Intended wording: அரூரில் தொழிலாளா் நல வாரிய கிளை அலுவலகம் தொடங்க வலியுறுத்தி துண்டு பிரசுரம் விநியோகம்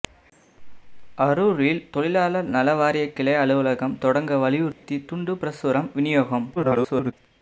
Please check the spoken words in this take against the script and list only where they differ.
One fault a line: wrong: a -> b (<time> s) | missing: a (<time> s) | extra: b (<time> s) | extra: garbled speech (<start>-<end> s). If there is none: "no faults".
extra: garbled speech (6.6-7.1 s)